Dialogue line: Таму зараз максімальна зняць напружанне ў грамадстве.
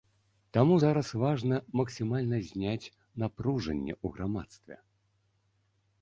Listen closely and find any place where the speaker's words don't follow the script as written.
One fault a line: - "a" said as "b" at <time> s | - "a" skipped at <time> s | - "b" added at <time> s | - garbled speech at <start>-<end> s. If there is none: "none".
- "важна" added at 1.2 s